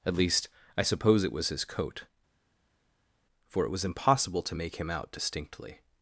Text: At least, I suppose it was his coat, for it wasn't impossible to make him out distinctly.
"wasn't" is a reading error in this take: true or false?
true